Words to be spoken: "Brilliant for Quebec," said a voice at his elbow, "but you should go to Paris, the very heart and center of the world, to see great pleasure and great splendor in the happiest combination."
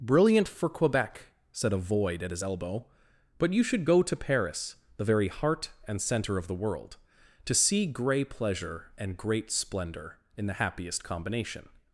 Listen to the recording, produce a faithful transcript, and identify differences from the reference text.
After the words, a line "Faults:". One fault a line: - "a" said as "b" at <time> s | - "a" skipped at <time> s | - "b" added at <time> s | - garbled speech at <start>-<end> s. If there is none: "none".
"Brilliant for Quebec," said a void at his elbow, "but you should go to Paris, the very heart and center of the world, to see grey pleasure and great splendor in the happiest combination."
Faults:
- "voice" said as "void" at 1.8 s
- "great" said as "grey" at 7.9 s